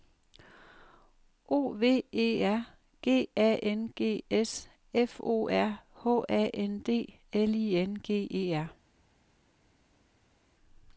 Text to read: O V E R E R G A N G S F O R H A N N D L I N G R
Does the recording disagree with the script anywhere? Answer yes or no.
yes